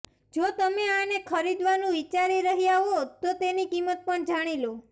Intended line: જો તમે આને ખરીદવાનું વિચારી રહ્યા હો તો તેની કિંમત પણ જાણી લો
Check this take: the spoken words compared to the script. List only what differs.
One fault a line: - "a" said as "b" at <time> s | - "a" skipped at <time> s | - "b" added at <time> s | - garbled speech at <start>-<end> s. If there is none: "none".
none